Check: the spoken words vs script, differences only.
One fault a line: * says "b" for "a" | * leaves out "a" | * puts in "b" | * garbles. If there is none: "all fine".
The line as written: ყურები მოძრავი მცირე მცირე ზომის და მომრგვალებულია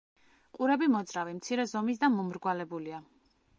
* leaves out "მცირე"